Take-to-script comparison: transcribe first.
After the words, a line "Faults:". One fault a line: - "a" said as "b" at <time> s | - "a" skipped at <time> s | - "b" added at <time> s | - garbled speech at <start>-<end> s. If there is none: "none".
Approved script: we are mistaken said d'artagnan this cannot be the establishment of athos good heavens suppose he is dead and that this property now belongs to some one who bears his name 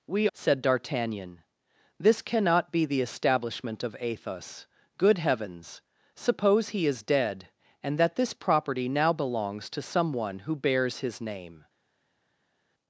we said d'artagnan this cannot be the establishment of athos good heavens suppose he is dead and that this property now belongs to some one who bears his name
Faults:
- "are mistaken" skipped at 0.3 s